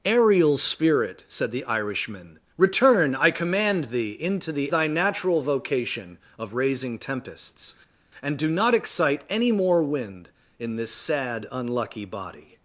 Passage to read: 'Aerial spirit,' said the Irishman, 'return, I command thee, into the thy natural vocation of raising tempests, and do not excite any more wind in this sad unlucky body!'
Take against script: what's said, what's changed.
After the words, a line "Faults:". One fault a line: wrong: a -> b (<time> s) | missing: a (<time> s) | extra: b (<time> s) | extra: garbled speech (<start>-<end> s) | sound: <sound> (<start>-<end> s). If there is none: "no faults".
'Aerial spirit,' said the Irishman, 'return, I command thee, into the thy natural vocation of raising tempests, and do not excite any more wind in this sad unlucky body!'
Faults:
no faults